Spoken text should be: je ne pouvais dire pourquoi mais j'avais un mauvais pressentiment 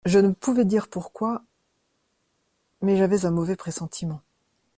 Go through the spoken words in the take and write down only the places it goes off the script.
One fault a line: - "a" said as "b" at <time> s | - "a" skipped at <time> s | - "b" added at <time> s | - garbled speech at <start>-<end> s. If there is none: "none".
none